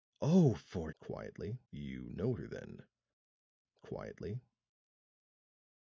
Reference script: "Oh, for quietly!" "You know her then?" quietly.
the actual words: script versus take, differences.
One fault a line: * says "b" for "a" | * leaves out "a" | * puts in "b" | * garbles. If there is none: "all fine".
all fine